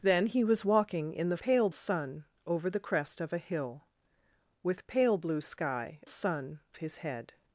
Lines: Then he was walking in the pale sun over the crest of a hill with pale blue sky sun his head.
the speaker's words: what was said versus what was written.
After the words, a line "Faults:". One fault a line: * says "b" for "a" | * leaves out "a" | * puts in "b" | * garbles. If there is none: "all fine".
Then he was walking in the pale sun over the crest of a hill with pale blue sky sun his head.
Faults:
all fine